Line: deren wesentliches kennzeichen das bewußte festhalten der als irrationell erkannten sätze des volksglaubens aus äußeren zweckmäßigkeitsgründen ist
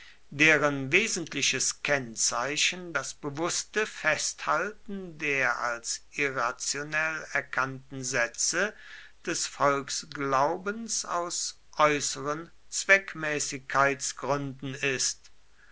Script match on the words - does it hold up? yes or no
yes